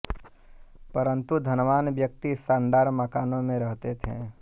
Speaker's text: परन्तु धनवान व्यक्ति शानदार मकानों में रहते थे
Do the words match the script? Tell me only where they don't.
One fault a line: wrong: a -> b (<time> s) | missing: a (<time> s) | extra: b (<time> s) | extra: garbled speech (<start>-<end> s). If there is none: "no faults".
no faults